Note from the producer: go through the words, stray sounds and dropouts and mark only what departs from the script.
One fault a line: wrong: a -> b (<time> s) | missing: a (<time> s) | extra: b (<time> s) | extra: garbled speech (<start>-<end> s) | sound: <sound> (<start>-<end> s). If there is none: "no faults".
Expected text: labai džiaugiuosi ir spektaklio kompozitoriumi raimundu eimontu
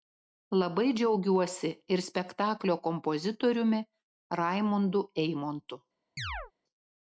sound: chirp (6.2-6.5 s)